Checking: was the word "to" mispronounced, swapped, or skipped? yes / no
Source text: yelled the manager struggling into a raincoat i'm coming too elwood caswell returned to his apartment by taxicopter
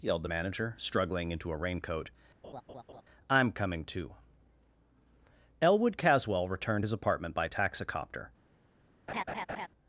yes